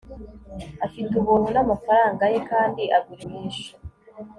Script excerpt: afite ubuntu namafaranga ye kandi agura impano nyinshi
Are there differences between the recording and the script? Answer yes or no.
yes